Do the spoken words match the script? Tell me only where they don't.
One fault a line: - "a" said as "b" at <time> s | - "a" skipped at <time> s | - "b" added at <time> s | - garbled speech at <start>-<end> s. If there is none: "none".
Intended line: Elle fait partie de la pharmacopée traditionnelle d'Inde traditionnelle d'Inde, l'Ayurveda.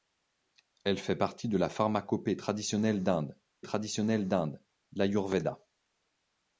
none